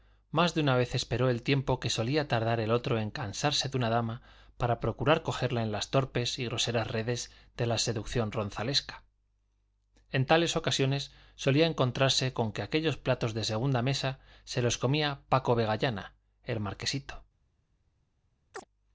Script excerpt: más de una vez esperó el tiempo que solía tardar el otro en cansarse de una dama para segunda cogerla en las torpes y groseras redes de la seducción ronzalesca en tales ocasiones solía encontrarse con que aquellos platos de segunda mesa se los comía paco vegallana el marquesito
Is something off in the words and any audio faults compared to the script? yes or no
yes